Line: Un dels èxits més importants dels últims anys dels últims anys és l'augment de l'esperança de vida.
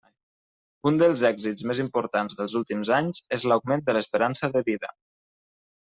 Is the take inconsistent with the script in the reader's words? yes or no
yes